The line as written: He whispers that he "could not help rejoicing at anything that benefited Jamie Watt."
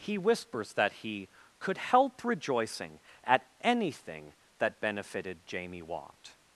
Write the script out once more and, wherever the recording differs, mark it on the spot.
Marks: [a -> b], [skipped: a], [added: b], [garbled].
He whispers that he "could [skipped: not] help rejoicing at anything that benefited Jamie Watt."